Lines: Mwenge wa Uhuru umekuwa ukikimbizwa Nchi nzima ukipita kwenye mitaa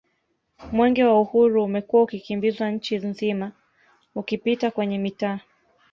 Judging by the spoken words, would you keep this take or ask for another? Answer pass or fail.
pass